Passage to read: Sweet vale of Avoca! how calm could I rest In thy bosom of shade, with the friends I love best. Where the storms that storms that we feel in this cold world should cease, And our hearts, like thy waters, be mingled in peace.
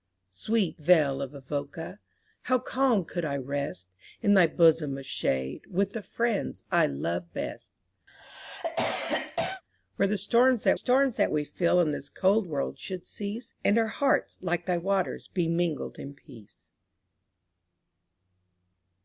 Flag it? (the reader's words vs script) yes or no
no